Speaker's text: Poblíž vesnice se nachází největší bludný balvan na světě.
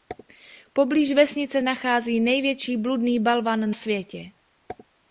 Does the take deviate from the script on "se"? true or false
true